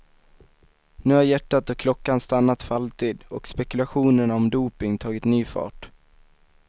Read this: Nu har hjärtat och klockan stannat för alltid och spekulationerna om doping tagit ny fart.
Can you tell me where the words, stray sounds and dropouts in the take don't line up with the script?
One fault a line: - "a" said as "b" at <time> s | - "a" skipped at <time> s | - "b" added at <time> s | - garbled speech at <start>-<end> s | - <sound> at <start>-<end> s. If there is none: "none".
none